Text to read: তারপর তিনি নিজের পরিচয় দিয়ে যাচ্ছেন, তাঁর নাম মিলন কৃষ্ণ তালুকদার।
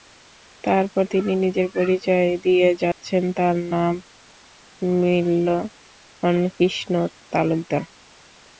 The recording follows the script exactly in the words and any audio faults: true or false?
false